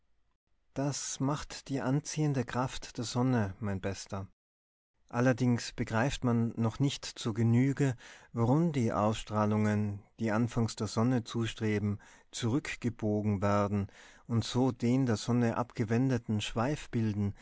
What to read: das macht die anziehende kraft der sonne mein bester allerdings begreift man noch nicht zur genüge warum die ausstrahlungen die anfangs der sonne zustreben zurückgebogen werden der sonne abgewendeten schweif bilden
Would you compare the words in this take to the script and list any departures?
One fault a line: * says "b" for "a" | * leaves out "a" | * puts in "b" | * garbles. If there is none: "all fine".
* puts in "und so den"